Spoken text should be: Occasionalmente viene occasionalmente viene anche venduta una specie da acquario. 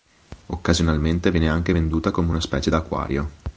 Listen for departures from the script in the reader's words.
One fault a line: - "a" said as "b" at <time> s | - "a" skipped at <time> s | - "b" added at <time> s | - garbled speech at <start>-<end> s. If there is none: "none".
- "occasionalmente viene" skipped at 1.5 s
- "come" added at 2.1 s